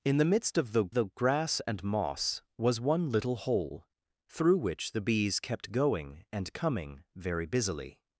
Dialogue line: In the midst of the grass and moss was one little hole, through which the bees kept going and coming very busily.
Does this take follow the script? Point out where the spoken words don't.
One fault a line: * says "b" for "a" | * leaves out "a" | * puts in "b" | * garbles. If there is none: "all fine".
* puts in "the"